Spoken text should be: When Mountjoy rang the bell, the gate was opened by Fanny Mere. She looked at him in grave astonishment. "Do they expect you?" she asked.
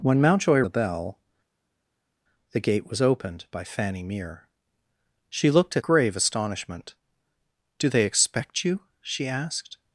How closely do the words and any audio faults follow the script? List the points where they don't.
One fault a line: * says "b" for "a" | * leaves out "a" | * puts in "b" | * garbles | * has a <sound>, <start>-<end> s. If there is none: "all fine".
* leaves out "rang"
* leaves out "him in"